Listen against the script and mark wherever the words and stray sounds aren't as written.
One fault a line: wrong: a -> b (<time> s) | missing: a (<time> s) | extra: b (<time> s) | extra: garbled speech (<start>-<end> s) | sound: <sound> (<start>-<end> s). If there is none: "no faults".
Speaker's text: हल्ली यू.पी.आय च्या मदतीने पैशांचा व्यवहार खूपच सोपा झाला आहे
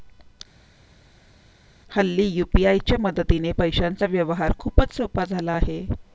no faults